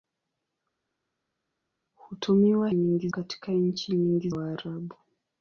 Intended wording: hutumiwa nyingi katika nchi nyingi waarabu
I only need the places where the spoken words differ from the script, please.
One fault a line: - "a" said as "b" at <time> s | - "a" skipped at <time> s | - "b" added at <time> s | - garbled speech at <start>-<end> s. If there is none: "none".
none